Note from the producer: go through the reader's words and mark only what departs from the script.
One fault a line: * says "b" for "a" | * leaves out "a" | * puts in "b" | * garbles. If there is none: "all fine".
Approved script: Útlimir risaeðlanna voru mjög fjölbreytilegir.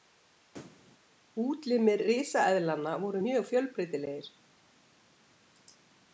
all fine